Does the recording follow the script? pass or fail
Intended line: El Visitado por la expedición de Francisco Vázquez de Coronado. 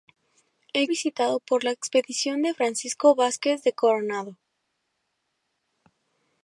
pass